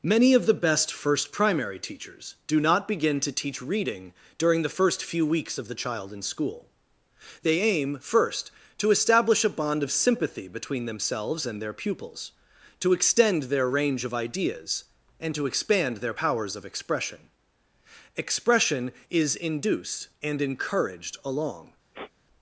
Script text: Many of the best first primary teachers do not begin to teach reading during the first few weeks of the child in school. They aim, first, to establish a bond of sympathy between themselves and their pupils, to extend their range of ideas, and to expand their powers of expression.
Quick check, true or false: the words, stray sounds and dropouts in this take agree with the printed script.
false